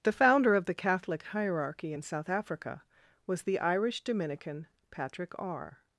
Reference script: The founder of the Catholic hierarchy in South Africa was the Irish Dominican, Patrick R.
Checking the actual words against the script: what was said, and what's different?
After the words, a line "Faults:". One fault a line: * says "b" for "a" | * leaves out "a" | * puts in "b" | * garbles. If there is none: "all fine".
The founder of the Catholic hierarchy in South Africa was the Irish Dominican, Patrick R.
Faults:
all fine